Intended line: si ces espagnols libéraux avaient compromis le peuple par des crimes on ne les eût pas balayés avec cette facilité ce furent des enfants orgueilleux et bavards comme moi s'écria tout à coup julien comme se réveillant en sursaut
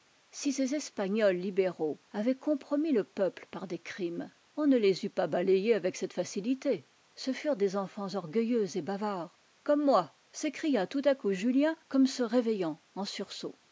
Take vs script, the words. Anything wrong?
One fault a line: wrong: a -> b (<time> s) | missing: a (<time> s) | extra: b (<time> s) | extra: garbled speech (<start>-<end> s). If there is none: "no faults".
no faults